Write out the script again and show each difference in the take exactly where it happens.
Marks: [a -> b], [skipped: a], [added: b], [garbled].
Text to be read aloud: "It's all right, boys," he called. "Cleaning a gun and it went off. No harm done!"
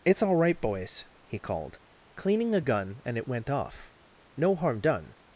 "It's all right, boys," he called. "Cleaning a gun and it went off. No harm done!"